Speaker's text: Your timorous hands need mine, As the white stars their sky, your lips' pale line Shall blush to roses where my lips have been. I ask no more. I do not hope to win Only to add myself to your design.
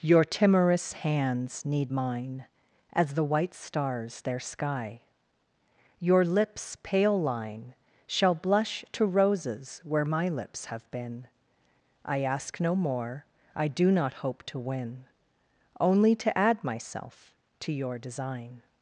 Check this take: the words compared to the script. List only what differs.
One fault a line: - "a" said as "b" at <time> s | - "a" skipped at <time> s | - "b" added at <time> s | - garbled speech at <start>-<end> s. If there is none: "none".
none